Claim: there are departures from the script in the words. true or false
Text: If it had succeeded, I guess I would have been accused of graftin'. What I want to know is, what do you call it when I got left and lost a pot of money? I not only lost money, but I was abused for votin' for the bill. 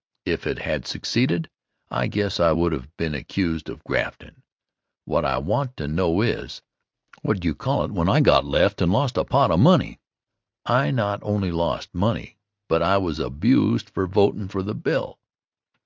false